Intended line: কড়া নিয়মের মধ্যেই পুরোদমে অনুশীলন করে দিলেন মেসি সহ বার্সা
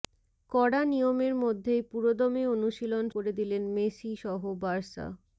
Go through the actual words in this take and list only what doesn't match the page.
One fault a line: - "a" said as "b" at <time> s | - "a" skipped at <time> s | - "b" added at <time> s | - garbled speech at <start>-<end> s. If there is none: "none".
none